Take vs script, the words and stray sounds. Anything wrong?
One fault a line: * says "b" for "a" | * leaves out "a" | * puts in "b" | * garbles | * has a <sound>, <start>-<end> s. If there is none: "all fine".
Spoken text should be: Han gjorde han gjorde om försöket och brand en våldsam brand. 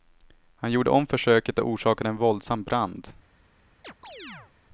* leaves out "han gjorde"
* says "orsakade" for "brand"
* has a chirp, 3.8-4.5 s